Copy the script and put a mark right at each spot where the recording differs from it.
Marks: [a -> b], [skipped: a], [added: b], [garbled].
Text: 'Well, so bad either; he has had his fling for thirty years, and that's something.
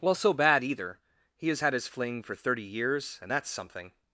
'Well, so bad either; he has had his fling for thirty years, and that's something.